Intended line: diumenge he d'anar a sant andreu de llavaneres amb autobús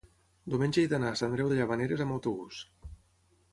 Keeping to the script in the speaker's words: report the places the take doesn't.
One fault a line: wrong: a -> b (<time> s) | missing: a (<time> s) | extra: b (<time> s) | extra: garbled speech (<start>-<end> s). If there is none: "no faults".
missing: sant (1.2 s)